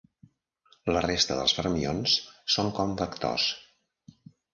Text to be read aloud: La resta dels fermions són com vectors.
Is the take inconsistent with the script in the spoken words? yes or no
no